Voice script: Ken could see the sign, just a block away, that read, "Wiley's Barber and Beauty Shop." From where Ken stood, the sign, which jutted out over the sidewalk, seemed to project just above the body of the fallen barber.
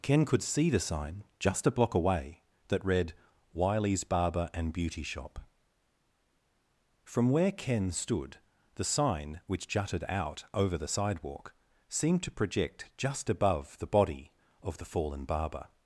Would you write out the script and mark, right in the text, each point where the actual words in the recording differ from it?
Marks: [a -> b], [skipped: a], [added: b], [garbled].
Ken could see the sign, just a block away, that read, "Wiley's Barber and Beauty Shop." From where Ken stood, the sign, which jutted out over the sidewalk, seemed to project just above the body of the fallen barber.